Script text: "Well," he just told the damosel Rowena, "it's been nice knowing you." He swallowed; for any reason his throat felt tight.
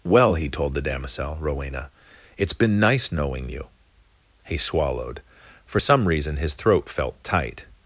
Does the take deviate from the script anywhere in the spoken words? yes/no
yes